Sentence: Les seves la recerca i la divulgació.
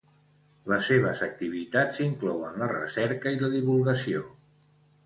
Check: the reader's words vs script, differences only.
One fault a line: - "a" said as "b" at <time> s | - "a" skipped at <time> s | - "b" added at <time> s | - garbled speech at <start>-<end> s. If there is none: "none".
- "activitats inclouen" added at 1.3 s